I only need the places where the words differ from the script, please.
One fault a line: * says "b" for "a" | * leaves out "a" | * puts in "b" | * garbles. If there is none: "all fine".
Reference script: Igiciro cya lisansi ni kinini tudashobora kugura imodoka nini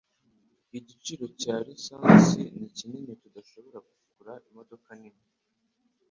all fine